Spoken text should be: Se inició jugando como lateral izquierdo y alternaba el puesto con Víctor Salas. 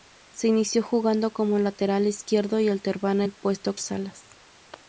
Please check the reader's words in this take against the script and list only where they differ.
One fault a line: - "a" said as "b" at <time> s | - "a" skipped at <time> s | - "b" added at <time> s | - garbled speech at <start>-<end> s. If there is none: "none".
- "con Víctor" skipped at 3.7 s